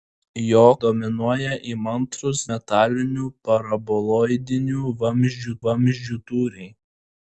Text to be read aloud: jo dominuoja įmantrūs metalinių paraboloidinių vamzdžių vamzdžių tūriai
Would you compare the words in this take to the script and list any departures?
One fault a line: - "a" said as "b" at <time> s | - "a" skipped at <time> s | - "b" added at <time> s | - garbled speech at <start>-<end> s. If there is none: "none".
none